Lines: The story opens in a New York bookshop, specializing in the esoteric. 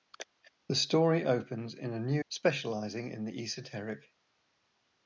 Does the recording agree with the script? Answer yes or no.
no